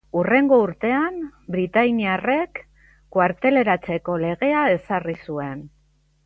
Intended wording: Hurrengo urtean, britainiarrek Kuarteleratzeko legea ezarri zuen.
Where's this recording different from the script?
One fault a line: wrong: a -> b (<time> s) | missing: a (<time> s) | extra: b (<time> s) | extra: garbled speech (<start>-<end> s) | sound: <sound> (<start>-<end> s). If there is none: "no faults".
no faults